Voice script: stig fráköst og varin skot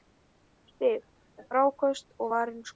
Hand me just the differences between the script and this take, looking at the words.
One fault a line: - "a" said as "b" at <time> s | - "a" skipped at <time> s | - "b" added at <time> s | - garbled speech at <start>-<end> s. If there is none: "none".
none